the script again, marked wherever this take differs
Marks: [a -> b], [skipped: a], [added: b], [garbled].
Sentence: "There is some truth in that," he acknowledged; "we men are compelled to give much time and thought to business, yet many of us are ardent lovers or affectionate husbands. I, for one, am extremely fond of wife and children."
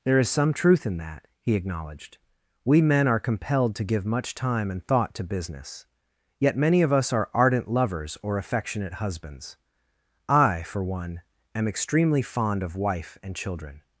"There is some truth in that," he acknowledged; "we men are compelled to give much time and thought to business, yet many of us are ardent lovers or affectionate husbands. I, for one, am extremely fond of wife and children."